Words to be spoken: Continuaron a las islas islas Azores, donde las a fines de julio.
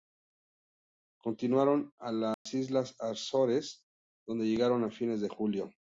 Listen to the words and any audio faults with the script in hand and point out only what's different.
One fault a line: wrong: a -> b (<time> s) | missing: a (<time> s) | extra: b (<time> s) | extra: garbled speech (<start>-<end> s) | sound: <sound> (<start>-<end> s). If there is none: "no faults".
sound: dropout (2.3-2.5 s)
missing: islas (3.0 s)
wrong: las -> llegaron (4.5 s)